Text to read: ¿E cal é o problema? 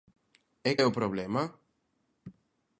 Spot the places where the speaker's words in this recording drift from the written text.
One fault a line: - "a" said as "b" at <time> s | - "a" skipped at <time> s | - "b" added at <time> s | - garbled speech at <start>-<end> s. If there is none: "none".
- "cal" skipped at 0.7 s